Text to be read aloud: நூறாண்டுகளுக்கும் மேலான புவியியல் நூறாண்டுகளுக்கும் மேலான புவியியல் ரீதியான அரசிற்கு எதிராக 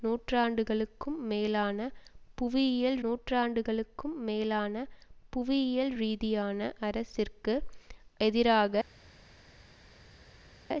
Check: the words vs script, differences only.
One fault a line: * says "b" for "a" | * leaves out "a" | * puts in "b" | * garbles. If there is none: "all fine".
all fine